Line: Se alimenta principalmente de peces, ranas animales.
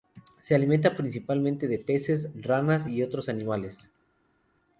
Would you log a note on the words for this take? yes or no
yes